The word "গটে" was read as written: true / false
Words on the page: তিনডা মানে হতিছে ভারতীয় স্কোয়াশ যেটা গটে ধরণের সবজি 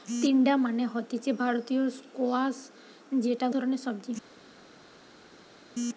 false